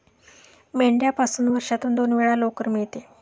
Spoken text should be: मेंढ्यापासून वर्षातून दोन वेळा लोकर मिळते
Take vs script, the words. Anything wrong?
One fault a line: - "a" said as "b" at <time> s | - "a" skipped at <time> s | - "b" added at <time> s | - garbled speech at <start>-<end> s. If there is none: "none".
none